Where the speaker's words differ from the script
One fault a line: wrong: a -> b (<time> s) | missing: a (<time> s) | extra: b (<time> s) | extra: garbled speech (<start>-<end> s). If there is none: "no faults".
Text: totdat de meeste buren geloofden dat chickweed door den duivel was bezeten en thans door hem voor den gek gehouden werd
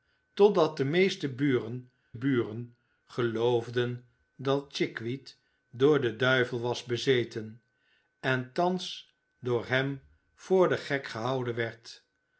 extra: buren (2.1 s)